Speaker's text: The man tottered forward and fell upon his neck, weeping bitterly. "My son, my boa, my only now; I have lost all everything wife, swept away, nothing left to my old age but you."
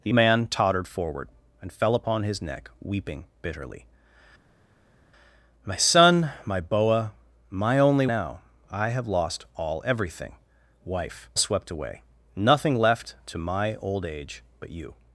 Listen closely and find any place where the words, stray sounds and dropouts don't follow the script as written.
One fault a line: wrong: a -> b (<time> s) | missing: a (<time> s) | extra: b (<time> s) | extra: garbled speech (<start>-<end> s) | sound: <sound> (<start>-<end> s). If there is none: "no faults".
no faults